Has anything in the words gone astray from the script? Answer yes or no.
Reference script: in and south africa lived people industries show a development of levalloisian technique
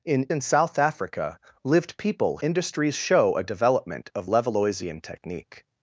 no